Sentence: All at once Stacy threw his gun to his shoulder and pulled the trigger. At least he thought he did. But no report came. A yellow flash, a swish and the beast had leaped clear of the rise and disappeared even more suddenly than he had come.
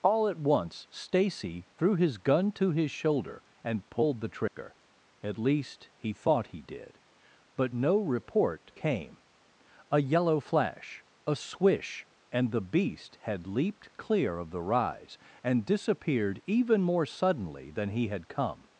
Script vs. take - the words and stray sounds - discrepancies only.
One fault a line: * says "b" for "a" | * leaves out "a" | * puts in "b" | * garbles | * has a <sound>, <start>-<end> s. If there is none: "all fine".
* has a dropout, 4.5-4.6 s